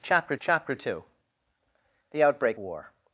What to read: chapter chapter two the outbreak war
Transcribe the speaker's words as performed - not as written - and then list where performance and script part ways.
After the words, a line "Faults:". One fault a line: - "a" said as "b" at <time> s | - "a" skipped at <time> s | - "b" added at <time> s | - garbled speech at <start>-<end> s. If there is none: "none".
chapter chapter two the outbreak war
Faults:
none